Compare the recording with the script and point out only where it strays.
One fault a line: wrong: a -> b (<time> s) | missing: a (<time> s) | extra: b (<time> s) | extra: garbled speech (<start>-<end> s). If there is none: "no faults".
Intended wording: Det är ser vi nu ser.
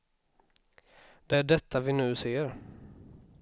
wrong: ser -> detta (1.4 s)